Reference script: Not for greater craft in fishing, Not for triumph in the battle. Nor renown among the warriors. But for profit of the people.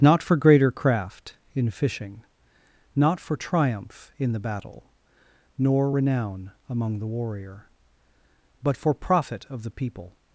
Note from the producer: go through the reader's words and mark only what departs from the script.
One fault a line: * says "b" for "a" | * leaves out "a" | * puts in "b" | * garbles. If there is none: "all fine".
* says "warrior" for "warriors"